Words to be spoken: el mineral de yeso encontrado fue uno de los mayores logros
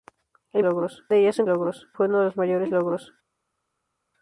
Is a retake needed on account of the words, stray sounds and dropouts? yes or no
yes